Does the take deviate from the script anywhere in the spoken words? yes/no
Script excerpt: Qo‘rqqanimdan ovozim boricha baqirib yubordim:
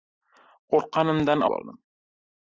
yes